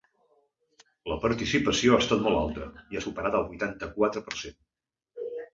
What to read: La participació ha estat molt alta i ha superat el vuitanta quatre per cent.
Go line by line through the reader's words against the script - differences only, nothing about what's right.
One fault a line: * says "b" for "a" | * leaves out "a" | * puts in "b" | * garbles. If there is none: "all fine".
all fine